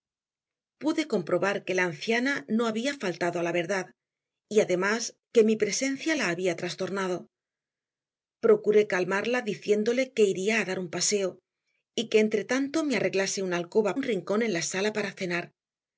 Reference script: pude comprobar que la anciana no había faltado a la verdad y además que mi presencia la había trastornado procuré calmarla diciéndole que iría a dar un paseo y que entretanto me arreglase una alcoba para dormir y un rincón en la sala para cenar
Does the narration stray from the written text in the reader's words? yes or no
yes